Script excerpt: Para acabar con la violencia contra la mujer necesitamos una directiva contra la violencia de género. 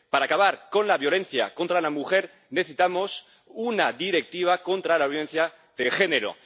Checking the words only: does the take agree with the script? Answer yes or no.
yes